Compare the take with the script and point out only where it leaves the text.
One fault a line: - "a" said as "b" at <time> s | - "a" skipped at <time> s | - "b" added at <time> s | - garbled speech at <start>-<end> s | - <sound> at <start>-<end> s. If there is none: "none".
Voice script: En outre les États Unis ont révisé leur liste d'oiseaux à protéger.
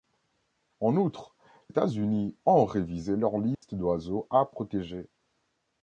- "les" skipped at 1.4 s
- dropout at 3.5-3.6 s